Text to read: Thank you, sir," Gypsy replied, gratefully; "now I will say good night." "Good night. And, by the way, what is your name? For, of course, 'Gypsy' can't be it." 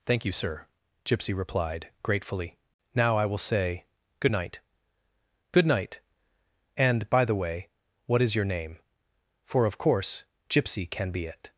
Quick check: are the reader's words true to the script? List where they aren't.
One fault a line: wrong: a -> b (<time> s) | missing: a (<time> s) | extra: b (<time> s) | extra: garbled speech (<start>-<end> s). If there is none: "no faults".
wrong: can't -> can (10.9 s)